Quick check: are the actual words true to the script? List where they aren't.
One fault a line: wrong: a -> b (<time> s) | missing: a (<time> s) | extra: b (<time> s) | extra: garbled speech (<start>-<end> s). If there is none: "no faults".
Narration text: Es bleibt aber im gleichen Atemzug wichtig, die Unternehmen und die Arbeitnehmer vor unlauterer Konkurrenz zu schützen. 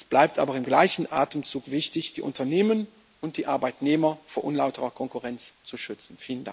no faults